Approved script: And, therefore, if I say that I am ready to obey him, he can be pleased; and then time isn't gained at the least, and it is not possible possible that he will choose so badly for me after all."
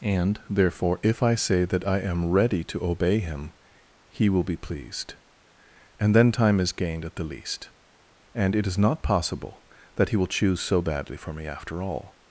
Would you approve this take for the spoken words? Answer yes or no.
no